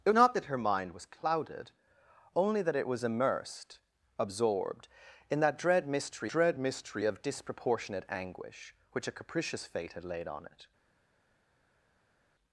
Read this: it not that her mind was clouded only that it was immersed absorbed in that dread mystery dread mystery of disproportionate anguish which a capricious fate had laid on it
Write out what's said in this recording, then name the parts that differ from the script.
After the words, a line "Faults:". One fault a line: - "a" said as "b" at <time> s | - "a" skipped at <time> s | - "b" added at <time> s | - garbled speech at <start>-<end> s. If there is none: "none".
it not that her mind was clouded only that it was immersed absorbed in that dread mystery dread mystery of disproportionate anguish which a capricious fate had laid on it
Faults:
none